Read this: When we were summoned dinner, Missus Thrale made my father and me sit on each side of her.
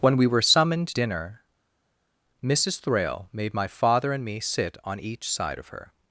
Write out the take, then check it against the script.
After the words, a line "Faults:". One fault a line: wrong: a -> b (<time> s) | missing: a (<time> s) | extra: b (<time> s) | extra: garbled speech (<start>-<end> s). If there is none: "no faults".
When we were summoned dinner, Missus Thrale made my father and me sit on each side of her.
Faults:
no faults